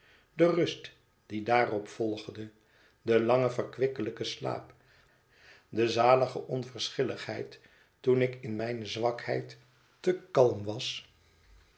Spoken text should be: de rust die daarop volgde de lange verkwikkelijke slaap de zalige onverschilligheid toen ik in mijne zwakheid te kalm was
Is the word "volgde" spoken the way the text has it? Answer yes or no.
yes